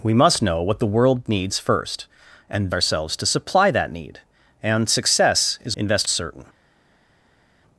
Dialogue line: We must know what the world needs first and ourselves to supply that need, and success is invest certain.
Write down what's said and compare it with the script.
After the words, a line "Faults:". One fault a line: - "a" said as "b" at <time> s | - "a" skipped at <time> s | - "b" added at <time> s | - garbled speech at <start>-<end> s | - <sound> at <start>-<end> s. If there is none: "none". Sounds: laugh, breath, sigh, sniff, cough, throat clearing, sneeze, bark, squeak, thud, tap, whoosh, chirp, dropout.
We must know what the world needs first and ourselves to supply that need, and success is invest certain.
Faults:
none